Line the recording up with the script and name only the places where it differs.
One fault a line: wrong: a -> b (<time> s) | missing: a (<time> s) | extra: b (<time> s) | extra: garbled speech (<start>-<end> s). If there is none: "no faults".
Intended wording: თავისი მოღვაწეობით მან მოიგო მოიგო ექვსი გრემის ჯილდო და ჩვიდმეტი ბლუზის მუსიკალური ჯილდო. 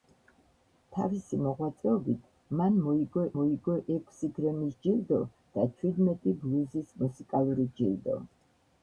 no faults